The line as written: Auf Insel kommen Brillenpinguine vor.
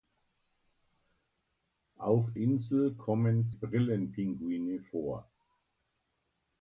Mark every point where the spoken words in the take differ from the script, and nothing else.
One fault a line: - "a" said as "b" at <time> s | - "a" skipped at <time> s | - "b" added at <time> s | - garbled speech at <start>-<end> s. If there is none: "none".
none